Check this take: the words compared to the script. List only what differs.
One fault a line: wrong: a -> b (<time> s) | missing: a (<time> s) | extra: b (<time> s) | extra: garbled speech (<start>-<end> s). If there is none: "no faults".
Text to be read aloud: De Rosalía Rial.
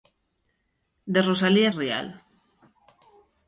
no faults